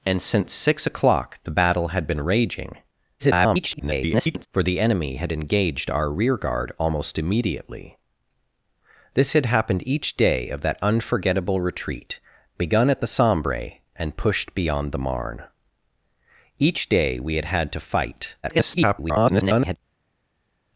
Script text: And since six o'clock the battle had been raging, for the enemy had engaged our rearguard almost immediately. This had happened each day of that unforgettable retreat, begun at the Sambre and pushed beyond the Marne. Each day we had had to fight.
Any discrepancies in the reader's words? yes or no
yes